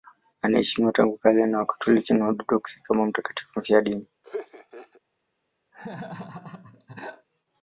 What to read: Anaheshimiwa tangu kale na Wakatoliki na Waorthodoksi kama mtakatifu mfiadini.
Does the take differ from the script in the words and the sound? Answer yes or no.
yes